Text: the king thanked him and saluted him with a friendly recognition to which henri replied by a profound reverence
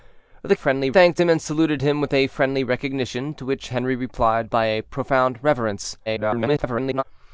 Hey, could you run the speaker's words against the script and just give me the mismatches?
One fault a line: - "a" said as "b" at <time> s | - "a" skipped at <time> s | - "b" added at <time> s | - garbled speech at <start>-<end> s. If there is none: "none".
- "king" said as "friendly" at 0.5 s
- garbled speech at 6.1-7.0 s